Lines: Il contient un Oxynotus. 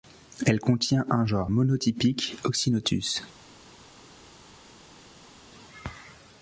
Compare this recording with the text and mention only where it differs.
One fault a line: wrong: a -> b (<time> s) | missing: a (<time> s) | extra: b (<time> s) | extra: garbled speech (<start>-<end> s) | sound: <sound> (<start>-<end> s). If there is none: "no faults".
wrong: Il -> Elle (0.5 s)
extra: genre monotypique (1.2 s)